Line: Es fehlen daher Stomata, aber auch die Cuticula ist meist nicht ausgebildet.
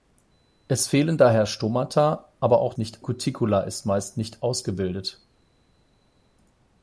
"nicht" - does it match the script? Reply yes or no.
yes